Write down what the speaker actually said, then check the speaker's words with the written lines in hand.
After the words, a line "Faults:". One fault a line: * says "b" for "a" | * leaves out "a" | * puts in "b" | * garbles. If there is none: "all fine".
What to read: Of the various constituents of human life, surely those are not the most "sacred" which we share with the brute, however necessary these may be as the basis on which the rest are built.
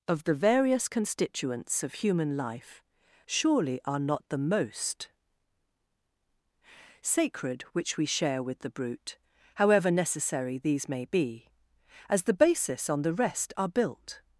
Of the various constituents of human life, surely are not the most "sacred" which we share with the brute, however necessary these may be as the basis on the rest are built.
Faults:
* leaves out "those"
* leaves out "which"